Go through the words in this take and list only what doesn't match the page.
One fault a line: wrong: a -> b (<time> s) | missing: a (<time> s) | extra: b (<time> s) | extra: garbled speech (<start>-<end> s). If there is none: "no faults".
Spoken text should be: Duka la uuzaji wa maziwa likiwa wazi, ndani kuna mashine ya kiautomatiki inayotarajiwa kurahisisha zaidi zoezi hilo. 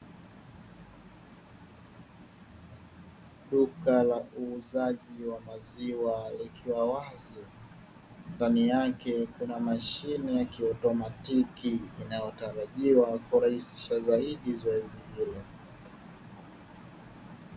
extra: yake (8.7 s)